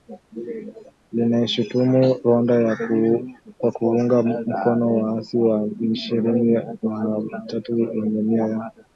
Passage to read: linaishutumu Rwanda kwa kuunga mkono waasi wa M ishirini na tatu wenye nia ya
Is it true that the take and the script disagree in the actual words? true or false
false